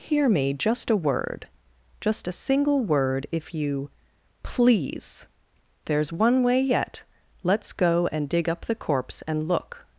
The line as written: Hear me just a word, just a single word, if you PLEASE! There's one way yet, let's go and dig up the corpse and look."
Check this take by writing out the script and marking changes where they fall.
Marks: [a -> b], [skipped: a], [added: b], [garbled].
Hear me just a word, just a single word, if you PLEASE! There's one way yet, let's go and dig up the corpse and look."